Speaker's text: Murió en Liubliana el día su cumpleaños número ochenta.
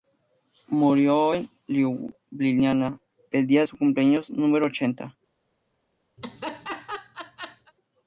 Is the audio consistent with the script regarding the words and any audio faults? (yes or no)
no